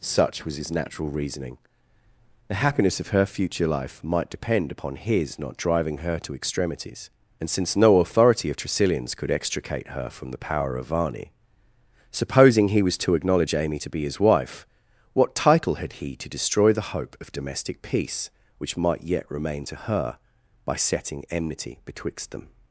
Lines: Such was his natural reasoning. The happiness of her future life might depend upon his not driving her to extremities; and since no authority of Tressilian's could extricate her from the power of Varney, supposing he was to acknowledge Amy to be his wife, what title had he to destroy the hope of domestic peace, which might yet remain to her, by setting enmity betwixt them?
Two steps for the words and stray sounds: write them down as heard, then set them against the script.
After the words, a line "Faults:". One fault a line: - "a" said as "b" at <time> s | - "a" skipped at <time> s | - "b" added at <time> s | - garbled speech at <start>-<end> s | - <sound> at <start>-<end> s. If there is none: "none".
Such was his natural reasoning. The happiness of her future life might depend upon his not driving her to extremities; and since no authority of Tressilian's could extricate her from the power of Varney, supposing he was to acknowledge Amy to be his wife, what title had he to destroy the hope of domestic peace, which might yet remain to her, by setting enmity betwixt them?
Faults:
none